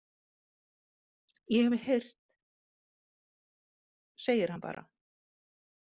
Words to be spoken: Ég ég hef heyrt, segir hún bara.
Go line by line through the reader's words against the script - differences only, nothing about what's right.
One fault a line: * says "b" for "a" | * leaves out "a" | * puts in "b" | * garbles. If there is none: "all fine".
* leaves out "ég"
* says "hann" for "hún"